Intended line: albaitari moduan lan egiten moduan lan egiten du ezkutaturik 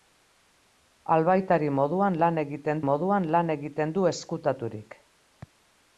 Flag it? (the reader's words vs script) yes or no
no